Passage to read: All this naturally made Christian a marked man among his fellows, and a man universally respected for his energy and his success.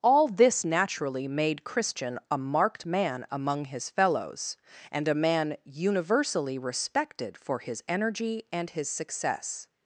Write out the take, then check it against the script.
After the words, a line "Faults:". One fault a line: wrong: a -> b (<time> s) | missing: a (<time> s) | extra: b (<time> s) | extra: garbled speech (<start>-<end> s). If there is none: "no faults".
All this naturally made Christian a marked man among his fellows, and a man universally respected for his energy and his success.
Faults:
no faults